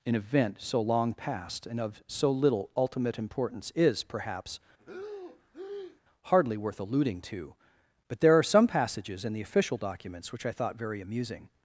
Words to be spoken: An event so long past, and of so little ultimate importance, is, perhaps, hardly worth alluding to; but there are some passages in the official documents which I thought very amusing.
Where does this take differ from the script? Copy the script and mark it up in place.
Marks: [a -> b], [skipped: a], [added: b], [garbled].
An event so long past, and of so little ultimate importance, is, perhaps, hardly worth alluding to; but there are some passages in the official documents which I thought very amusing.